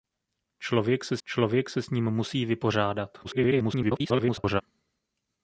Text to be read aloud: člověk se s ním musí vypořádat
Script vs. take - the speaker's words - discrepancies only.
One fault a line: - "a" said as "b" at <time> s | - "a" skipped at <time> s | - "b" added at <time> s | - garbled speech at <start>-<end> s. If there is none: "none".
- "člověk se" added at 1.2 s
- garbled speech at 3.2-4.6 s